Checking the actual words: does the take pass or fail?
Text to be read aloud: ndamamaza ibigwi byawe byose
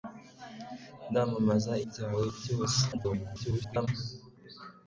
fail